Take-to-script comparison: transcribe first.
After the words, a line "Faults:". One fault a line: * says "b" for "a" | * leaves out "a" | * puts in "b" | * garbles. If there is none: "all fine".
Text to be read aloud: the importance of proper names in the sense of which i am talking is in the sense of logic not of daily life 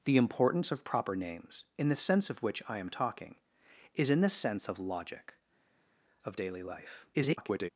the importance of proper names in the sense of which i am talking is in the sense of logic of daily life [garbled]
Faults:
* leaves out "not"
* garbles